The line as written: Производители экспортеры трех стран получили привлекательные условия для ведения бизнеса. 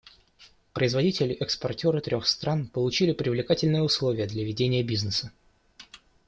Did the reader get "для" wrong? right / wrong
right